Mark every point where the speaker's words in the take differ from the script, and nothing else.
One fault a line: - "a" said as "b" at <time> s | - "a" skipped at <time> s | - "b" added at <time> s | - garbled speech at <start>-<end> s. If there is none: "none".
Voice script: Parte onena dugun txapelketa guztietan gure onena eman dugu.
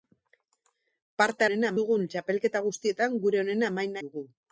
none